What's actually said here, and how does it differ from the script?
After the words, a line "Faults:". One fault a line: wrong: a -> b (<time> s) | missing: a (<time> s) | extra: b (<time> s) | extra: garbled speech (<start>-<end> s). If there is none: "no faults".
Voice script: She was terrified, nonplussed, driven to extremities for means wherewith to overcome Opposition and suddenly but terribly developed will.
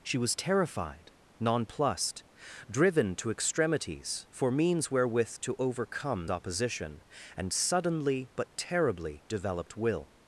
She was terrified, nonplussed, driven to extremities for means wherewith to overcome Opposition and suddenly but terribly developed will.
Faults:
no faults